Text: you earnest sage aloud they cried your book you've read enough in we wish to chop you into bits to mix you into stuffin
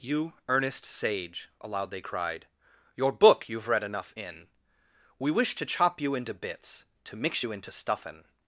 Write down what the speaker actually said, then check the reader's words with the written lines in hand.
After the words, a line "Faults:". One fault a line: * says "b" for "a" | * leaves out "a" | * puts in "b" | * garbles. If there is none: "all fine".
you earnest sage aloud they cried your book you've read enough in we wish to chop you into bits to mix you into stuffin
Faults:
all fine